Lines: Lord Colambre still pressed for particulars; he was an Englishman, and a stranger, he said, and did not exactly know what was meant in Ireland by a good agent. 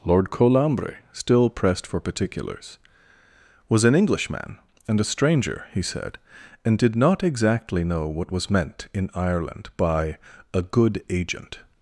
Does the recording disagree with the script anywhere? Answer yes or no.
yes